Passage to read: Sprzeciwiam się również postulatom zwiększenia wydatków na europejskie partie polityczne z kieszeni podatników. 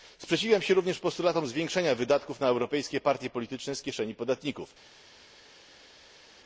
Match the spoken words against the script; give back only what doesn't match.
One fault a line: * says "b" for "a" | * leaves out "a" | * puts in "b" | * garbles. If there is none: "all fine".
all fine